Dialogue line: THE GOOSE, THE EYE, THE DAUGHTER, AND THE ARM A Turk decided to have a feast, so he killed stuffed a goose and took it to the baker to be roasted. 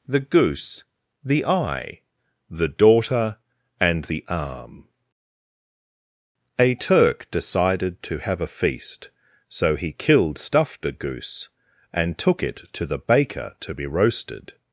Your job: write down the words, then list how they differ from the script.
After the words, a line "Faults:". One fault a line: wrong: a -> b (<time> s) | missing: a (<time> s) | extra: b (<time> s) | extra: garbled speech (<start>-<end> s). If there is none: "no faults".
THE GOOSE, THE EYE, THE DAUGHTER, AND THE ARM A Turk decided to have a feast, so he killed stuffed a goose and took it to the baker to be roasted.
Faults:
no faults